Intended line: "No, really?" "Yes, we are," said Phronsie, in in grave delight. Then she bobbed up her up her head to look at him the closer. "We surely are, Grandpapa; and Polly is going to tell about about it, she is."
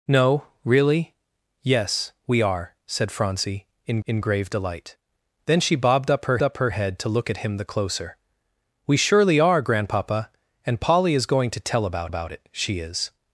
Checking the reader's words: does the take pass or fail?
pass